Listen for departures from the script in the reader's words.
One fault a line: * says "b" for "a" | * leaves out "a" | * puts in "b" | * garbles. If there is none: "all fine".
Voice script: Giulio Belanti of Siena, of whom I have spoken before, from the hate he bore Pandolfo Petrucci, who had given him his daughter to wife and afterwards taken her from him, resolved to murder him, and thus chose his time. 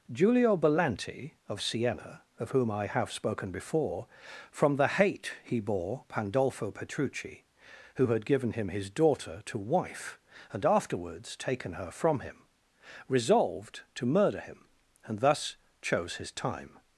all fine